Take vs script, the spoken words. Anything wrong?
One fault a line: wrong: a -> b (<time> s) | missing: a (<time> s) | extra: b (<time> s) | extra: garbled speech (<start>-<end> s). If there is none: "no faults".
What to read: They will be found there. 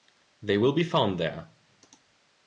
no faults